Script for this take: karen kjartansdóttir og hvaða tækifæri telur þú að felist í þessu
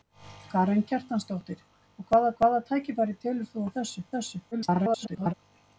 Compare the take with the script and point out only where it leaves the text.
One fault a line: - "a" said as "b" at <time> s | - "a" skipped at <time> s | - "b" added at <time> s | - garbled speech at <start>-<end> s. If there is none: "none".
- "hvaða" added at 2.4 s
- "felist" said as "þessu" at 3.8 s
- garbled speech at 4.5-5.3 s